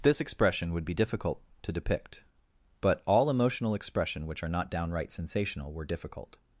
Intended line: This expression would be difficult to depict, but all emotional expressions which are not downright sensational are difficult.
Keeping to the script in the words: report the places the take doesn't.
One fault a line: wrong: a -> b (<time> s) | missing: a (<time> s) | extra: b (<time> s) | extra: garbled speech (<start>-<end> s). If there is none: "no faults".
wrong: expressions -> expression (3.8 s)
wrong: are -> were (5.7 s)